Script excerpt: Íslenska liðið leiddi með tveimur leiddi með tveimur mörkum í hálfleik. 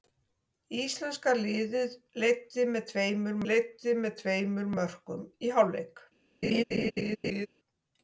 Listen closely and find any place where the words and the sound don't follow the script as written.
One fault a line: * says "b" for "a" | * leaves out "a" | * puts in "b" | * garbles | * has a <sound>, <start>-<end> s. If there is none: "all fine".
* has a laugh, 6.4-7.5 s